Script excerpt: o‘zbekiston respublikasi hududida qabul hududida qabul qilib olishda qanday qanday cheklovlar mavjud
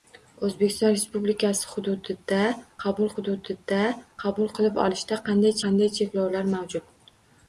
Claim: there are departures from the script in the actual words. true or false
false